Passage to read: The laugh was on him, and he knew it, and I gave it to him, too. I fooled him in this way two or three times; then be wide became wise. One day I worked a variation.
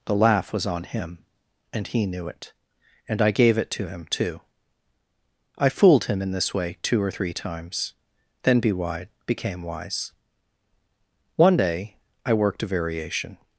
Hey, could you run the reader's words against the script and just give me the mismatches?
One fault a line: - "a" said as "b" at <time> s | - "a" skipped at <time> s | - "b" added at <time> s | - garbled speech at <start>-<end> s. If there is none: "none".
none